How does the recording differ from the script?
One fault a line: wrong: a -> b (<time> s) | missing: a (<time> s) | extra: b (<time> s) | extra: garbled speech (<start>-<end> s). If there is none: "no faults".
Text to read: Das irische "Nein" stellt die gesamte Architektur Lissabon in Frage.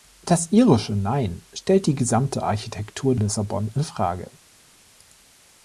no faults